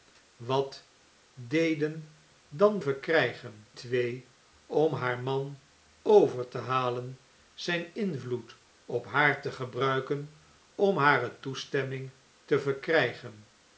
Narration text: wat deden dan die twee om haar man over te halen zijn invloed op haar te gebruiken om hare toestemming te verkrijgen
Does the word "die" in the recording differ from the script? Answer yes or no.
yes